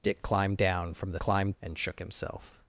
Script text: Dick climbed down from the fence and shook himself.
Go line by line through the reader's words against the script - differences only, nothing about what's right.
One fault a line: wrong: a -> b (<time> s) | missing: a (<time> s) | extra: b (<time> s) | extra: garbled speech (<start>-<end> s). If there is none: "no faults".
wrong: fence -> climbed (1.2 s)